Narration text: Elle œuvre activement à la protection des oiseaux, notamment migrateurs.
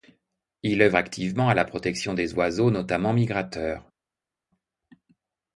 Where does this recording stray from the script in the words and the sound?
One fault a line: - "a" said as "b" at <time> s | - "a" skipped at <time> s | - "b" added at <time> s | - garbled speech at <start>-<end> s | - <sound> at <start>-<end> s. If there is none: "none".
- "Elle" said as "Il" at 0.6 s